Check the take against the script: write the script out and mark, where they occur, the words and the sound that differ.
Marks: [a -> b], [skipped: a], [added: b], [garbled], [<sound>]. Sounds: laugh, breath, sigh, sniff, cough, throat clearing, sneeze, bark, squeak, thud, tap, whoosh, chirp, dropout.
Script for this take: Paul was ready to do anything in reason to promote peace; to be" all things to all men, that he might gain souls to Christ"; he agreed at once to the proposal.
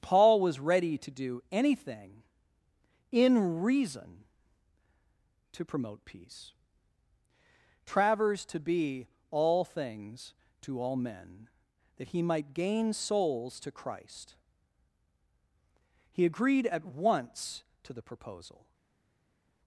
Paul was ready to do anything in reason to promote peace; [added: travers] to be" all things to all men, that he might gain souls to Christ"; he agreed at once to the proposal.